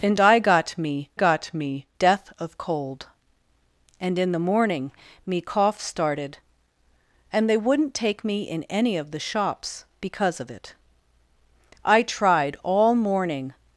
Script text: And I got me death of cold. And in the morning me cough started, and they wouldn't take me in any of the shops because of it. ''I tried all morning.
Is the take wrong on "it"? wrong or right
right